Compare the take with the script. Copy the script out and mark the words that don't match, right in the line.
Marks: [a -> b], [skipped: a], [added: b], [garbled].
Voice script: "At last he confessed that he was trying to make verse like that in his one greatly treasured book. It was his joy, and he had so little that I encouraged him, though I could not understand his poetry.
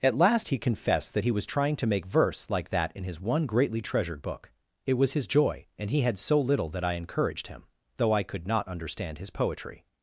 "At last he confessed that he was trying to make verse like that in his one greatly treasured book. It was his joy, and he had so little that I encouraged him, though I could not understand his poetry.